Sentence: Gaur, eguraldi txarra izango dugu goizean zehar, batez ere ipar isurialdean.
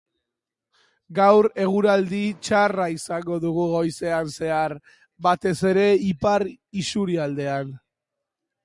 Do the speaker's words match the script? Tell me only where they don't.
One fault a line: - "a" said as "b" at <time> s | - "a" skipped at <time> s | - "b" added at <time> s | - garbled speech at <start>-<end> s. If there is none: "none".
none